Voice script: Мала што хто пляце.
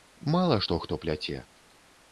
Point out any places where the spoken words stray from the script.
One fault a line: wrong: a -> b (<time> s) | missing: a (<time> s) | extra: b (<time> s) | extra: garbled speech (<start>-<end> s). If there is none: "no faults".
no faults